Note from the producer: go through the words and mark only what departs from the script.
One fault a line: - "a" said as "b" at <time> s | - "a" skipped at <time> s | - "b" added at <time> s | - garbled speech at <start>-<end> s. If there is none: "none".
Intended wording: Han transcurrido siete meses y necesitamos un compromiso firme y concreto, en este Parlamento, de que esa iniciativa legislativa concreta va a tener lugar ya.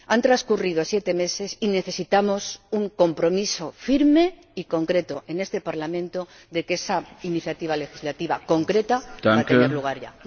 none